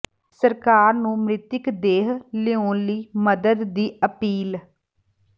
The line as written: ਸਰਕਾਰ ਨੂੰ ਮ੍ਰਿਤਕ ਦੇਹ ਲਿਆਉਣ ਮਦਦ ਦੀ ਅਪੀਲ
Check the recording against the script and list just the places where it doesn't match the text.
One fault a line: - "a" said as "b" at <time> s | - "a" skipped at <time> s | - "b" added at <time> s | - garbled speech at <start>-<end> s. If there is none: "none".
- "ਲਈ" added at 2.9 s